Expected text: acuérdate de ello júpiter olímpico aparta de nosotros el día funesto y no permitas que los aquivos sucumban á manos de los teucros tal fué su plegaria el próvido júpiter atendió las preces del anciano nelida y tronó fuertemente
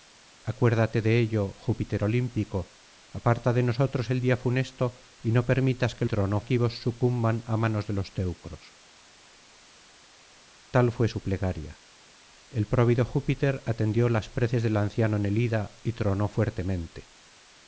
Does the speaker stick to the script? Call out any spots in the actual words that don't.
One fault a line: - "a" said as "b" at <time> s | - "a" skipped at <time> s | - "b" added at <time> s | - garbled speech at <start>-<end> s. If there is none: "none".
- "los" said as "tronó" at 6.0 s